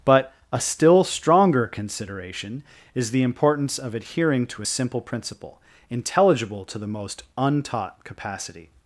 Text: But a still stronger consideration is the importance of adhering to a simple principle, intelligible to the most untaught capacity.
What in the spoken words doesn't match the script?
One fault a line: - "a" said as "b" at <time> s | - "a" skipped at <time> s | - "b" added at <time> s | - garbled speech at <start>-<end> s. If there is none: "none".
none